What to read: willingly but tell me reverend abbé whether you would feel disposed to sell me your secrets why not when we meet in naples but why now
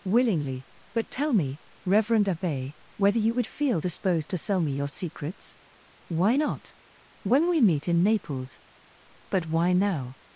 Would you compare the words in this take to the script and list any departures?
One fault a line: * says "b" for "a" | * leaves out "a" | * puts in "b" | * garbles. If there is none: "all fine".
all fine